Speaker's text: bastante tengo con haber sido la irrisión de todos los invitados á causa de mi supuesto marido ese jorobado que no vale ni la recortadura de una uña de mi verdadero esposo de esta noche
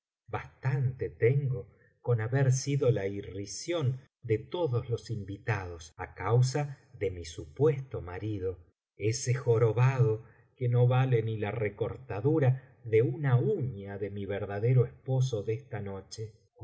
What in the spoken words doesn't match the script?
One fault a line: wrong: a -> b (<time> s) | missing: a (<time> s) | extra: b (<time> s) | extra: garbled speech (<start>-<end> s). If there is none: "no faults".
no faults